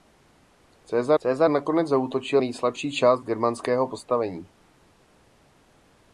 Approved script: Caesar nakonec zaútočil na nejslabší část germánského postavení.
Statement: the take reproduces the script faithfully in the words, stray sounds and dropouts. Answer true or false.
false